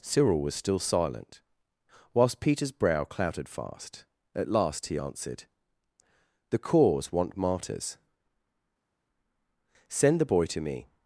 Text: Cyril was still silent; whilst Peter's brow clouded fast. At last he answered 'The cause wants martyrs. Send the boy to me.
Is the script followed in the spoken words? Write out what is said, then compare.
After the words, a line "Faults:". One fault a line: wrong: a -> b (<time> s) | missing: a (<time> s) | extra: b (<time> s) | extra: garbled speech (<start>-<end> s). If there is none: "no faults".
Cyril was still silent; whilst Peter's brow clouded fast. At last he answered 'The cause want martyrs. Send the boy to me.
Faults:
wrong: wants -> want (7.1 s)